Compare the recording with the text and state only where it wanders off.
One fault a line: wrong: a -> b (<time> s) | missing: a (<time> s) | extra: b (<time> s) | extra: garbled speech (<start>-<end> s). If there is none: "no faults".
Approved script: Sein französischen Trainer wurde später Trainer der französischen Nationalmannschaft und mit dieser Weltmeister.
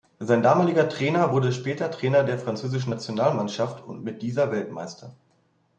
wrong: französischen -> damaliger (0.4 s)